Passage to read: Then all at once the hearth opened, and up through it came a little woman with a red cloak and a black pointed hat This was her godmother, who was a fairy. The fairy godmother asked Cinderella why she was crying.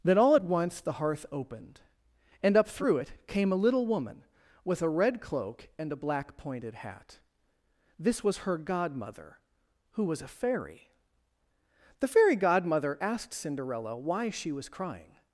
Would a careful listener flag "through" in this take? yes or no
no